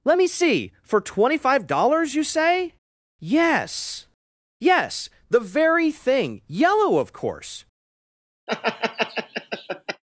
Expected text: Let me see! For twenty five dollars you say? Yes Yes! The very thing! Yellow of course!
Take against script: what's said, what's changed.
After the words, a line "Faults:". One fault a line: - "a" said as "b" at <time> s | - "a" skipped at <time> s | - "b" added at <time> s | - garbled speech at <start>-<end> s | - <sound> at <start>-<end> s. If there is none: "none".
Let me see! For twenty five dollars you say? Yes Yes! The very thing! Yellow of course!
Faults:
- laugh at 8.5-10.0 s